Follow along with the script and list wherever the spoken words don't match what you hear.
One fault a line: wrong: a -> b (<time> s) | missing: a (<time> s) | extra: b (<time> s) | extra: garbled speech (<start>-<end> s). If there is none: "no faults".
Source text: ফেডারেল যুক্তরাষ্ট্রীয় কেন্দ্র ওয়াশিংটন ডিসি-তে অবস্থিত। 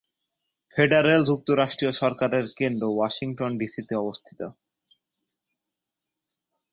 extra: সরকারের (1.9 s)